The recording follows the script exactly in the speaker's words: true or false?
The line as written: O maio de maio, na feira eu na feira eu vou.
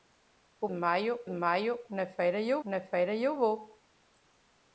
true